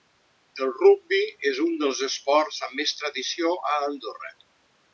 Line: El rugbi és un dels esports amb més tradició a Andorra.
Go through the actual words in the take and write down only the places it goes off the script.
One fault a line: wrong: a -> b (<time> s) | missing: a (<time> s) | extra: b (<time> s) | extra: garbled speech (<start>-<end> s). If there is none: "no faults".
no faults